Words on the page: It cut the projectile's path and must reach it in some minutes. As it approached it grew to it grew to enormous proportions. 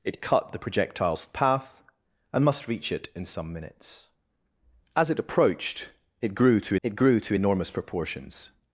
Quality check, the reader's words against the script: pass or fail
pass